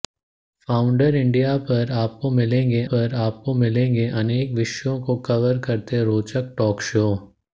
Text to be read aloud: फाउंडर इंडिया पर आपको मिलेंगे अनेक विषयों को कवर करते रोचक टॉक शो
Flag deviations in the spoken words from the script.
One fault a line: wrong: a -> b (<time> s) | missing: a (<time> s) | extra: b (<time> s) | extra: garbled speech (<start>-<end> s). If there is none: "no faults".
extra: पर आपको मिलेंगे (2.9 s)